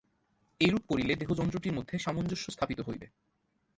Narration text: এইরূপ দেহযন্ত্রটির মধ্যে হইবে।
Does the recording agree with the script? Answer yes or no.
no